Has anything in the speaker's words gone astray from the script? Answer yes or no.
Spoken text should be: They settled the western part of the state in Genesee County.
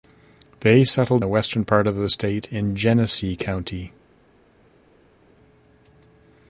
no